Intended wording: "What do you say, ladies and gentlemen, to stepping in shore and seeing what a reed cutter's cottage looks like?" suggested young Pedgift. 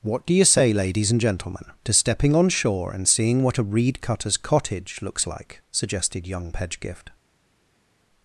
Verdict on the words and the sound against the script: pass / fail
fail